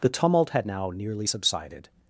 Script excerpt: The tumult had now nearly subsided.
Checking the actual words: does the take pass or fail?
pass